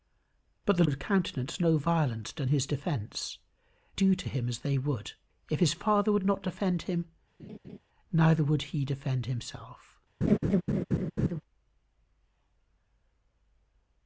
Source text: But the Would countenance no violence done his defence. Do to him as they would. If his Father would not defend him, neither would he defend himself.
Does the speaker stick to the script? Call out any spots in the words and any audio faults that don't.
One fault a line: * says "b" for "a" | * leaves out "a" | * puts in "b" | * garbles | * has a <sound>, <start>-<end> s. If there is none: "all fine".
* has a laugh, 7.4-7.8 s
* has a laugh, 10.2-11.4 s